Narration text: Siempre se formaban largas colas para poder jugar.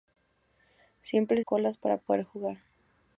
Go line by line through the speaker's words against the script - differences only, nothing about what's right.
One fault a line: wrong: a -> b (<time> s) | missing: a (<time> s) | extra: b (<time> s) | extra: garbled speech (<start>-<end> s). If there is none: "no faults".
missing: se formaban largas (1.4 s)